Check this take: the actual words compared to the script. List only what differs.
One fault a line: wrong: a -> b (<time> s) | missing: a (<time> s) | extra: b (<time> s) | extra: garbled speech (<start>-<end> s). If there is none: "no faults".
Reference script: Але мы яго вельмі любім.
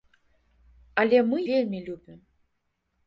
missing: яго (1.4 s)